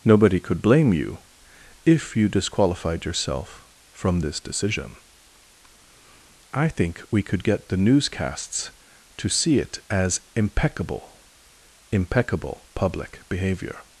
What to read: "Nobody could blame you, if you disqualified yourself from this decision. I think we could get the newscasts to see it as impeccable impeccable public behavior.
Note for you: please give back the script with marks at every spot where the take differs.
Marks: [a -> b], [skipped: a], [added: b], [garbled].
"Nobody could blame you, if you disqualified yourself from this decision. I think we could get the newscasts to see it as impeccable impeccable public behavior.